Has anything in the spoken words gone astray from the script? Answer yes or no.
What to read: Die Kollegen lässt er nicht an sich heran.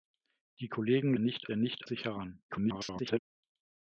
yes